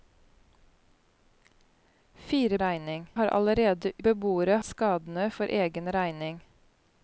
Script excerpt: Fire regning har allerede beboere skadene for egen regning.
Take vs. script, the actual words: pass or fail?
pass